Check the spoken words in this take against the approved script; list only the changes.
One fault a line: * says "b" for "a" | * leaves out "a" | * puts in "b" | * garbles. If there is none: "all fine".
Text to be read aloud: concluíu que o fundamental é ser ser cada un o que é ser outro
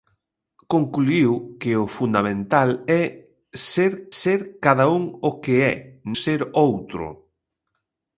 all fine